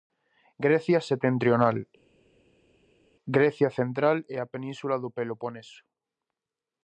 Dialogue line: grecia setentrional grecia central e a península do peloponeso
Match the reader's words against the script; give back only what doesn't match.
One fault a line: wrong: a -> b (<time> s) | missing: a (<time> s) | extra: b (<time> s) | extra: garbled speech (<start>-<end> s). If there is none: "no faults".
no faults